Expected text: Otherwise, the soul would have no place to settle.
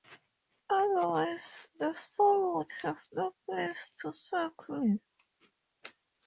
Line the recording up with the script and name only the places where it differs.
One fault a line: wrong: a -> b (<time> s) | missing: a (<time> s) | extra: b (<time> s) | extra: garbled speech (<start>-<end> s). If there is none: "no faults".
no faults